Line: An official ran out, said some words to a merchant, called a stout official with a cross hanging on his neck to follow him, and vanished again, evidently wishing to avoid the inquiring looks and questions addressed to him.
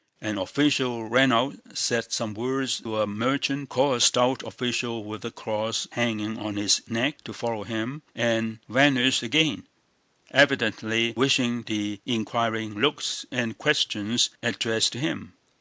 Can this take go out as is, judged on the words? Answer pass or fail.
fail